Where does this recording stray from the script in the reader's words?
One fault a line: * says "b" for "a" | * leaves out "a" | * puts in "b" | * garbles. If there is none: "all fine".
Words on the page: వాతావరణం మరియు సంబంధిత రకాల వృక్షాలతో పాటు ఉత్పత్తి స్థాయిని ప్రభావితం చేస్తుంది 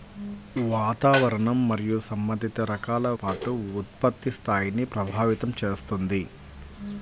* leaves out "వృక్షాలతో"